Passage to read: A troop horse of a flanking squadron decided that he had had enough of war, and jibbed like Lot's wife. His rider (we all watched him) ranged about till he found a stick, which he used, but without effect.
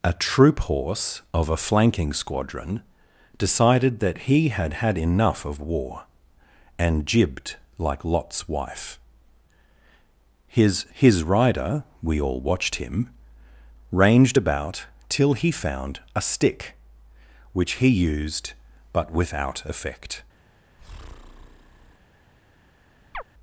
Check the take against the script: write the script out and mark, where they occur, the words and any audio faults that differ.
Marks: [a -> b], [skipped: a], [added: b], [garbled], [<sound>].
A troop horse of a flanking squadron decided that he had had enough of war, and jibbed like Lot's wife. His [added: His] rider (we all watched him) ranged about till he found a stick, which he used, but without effect. [breath] [chirp]